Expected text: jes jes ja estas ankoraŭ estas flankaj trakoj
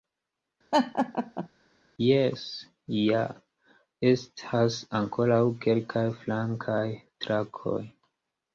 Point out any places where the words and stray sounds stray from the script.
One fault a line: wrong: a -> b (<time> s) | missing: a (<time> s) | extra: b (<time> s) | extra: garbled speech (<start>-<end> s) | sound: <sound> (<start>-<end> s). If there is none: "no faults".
sound: laugh (0.7-1.5 s)
missing: jes (2.4 s)
wrong: estas -> kelkaj (5.7 s)